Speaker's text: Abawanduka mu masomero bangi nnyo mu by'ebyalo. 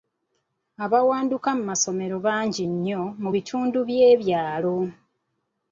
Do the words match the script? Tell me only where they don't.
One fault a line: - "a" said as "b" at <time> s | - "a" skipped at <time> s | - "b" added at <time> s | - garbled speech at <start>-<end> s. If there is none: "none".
- "bitundu" added at 3.3 s